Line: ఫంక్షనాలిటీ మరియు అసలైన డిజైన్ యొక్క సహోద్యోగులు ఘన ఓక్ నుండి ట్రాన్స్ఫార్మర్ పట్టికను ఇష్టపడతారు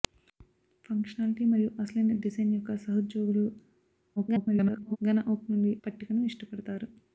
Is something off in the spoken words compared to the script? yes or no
yes